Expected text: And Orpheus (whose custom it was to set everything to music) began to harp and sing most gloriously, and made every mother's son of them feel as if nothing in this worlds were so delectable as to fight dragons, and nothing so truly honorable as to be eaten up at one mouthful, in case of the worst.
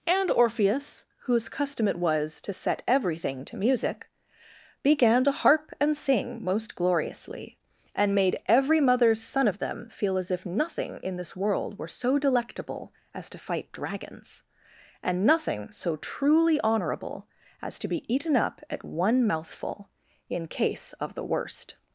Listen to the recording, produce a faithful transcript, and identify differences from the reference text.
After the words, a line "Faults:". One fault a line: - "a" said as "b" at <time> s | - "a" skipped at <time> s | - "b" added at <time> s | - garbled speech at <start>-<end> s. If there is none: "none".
And Orpheus (whose custom it was to set everything to music) began to harp and sing most gloriously, and made every mother's son of them feel as if nothing in this world were so delectable as to fight dragons, and nothing so truly honorable as to be eaten up at one mouthful, in case of the worst.
Faults:
- "worlds" said as "world" at 11.4 s